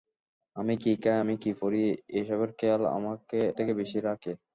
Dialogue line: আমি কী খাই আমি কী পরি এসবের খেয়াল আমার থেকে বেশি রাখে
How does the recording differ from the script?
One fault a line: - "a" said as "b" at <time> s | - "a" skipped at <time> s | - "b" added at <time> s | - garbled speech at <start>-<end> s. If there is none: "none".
- "আমার" skipped at 2.8 s